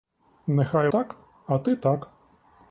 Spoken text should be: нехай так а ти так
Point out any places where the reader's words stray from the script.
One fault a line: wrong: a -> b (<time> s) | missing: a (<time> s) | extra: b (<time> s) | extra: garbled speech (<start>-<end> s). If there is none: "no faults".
no faults